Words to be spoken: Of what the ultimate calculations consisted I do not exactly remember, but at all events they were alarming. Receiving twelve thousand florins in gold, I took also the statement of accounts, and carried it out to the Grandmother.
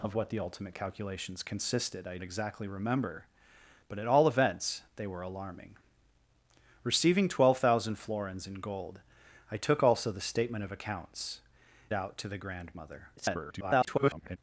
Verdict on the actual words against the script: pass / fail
fail